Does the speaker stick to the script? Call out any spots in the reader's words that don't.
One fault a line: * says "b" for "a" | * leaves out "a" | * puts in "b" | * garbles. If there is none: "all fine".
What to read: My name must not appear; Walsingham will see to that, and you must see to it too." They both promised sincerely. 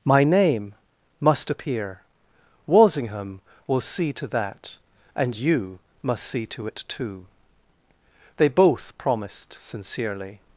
* leaves out "not"